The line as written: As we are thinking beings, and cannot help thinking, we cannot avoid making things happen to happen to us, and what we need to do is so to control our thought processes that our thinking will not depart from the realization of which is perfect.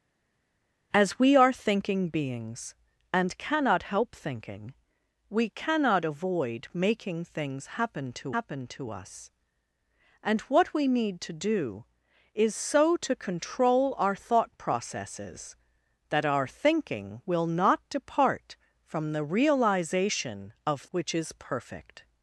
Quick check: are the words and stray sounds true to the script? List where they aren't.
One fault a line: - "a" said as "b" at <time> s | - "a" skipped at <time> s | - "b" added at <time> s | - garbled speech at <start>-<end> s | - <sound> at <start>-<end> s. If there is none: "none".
none